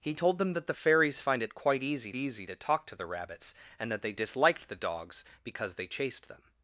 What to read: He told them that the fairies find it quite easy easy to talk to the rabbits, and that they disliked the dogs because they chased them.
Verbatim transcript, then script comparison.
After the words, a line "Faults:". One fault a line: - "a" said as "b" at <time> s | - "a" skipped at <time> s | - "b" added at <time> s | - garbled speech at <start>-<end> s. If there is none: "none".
He told them that the fairies find it quite easy easy to talk to the rabbits, and that they disliked the dogs because they chased them.
Faults:
none